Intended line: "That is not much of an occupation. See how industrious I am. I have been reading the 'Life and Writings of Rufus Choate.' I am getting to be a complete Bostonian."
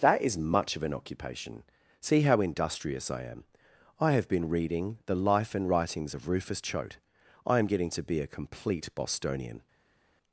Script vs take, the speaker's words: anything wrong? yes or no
yes